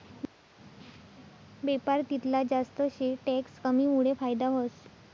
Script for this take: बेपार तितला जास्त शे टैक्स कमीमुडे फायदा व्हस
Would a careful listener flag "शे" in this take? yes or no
no